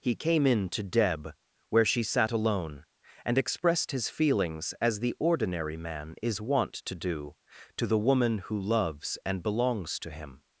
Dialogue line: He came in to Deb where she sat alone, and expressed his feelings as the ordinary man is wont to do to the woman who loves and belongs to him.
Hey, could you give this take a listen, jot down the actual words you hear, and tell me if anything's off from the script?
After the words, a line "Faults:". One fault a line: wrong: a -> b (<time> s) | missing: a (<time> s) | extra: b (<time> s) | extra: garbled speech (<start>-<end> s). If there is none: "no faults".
He came in to Deb where she sat alone, and expressed his feelings as the ordinary man is wont to do to the woman who loves and belongs to him.
Faults:
no faults